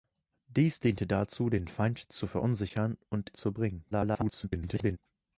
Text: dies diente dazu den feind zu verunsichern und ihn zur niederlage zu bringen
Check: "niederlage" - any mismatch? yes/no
yes